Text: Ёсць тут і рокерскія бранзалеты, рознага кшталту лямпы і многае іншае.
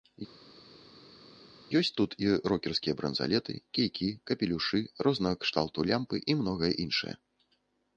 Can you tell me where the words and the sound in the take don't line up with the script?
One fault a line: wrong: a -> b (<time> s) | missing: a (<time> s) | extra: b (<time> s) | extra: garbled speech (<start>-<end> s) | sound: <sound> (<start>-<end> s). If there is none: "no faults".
extra: кійкі капелюшы (3.8 s)